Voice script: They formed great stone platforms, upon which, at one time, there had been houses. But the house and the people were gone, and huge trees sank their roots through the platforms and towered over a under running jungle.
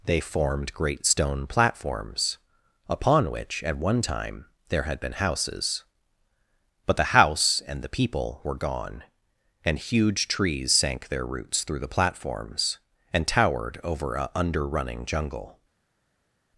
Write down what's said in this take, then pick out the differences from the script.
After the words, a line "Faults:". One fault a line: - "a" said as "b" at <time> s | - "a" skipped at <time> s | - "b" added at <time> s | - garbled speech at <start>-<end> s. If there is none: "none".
They formed great stone platforms, upon which, at one time, there had been houses. But the house and the people were gone, and huge trees sank their roots through the platforms and towered over a under running jungle.
Faults:
none